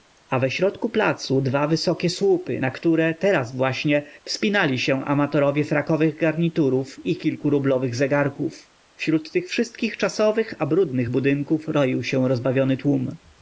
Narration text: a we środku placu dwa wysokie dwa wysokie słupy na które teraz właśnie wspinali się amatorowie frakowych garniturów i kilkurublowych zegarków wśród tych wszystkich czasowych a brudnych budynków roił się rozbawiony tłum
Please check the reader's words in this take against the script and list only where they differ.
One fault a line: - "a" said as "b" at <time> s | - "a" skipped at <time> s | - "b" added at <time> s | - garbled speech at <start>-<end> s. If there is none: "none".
- "dwa wysokie" skipped at 2.1 s